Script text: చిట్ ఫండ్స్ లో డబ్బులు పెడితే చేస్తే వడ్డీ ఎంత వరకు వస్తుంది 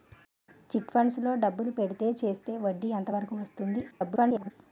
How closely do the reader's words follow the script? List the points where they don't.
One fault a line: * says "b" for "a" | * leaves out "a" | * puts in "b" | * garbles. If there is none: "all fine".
* garbles